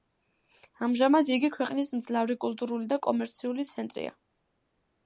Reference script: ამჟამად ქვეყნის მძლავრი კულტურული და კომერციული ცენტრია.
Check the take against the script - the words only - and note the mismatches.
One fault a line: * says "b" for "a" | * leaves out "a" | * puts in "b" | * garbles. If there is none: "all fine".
* puts in "იგი"